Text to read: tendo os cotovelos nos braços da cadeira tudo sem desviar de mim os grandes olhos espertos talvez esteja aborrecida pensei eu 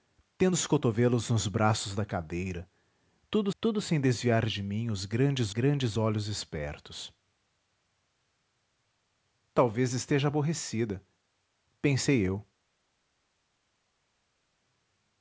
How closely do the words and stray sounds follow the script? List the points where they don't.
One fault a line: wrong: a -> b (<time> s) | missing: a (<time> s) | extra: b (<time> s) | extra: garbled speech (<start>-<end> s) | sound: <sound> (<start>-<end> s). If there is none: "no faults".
extra: tudo (3.6 s)
extra: grandes (5.5 s)